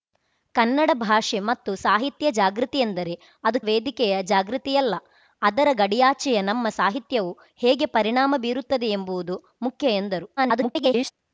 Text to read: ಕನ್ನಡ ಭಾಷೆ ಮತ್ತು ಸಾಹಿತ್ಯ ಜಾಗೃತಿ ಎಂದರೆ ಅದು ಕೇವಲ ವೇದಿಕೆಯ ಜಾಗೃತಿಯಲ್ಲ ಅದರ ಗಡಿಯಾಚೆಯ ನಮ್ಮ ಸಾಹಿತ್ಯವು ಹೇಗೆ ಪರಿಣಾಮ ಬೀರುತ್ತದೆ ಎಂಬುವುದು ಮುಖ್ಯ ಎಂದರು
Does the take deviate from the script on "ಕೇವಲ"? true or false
true